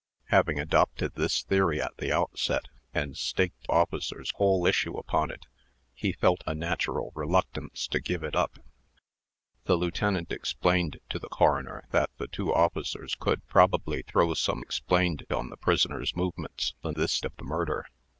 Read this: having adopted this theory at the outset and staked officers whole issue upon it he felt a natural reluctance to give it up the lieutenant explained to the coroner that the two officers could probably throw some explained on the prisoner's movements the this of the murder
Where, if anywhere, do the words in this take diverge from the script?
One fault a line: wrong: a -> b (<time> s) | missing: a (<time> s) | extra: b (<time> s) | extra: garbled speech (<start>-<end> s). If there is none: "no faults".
no faults